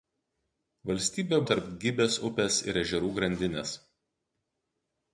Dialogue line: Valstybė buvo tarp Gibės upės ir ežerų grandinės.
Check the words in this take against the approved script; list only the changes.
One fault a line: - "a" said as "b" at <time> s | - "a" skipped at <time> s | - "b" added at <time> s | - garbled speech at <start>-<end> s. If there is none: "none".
- "buvo" skipped at 1.4 s